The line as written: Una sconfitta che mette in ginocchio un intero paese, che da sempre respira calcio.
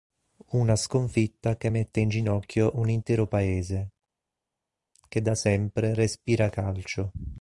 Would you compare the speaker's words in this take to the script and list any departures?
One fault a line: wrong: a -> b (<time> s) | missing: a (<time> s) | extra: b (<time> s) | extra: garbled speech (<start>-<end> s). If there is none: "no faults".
no faults